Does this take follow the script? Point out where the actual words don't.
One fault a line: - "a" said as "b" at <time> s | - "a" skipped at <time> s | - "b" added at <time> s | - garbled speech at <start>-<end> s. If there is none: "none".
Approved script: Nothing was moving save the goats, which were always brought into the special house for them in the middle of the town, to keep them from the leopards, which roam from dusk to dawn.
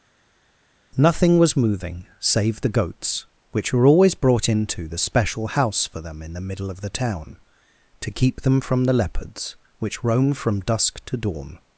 none